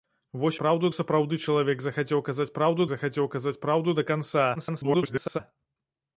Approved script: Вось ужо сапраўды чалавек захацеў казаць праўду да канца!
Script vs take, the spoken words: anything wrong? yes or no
yes